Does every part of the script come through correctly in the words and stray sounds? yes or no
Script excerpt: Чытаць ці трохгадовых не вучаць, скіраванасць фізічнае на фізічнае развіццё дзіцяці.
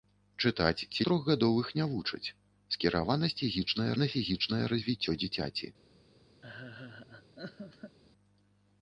no